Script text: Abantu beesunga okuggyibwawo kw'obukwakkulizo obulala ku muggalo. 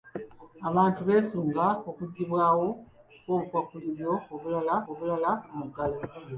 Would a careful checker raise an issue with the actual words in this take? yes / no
yes